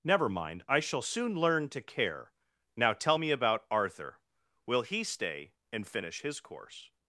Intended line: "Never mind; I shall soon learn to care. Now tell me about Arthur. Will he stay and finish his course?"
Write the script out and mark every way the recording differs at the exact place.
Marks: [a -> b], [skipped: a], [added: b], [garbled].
"Never mind; I shall soon learn to care. Now tell me about Arthur. Will he stay and finish his course?"